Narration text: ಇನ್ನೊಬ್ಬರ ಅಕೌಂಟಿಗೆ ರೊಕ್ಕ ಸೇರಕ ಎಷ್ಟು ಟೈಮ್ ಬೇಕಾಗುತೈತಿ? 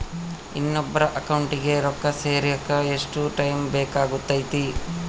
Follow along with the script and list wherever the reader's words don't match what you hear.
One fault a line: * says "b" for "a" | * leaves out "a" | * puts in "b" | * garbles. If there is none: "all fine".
all fine